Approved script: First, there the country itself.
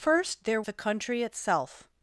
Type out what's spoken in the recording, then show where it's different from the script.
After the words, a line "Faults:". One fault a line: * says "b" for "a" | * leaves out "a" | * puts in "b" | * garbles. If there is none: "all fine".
First, there the country itself.
Faults:
all fine